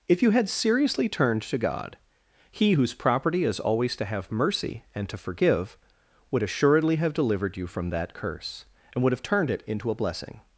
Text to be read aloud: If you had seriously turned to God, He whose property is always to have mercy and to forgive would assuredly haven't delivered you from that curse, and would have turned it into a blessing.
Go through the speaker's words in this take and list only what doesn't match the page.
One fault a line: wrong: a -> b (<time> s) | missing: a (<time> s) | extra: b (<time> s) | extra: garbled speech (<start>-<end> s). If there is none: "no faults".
wrong: haven't -> have (7.0 s)